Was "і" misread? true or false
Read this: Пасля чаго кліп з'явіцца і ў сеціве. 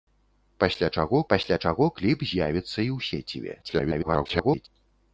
false